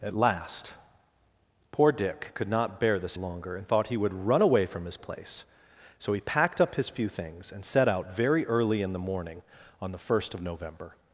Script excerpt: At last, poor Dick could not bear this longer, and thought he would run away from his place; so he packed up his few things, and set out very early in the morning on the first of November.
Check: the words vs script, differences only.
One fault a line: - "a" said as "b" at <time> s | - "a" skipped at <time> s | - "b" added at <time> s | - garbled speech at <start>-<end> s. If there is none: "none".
none